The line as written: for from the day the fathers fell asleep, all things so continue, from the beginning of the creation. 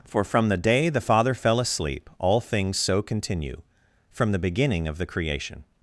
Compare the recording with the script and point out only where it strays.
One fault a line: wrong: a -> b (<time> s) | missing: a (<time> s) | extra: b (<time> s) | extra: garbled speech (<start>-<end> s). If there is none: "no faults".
wrong: fathers -> father (1.0 s)